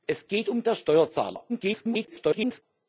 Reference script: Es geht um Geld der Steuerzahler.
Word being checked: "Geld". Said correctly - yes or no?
no